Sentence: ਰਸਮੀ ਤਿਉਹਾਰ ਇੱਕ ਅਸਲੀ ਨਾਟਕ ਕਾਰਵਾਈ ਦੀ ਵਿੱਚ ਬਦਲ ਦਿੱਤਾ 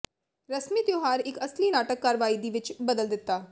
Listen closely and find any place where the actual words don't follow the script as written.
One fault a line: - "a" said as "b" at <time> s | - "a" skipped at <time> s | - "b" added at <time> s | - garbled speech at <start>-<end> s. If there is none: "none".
none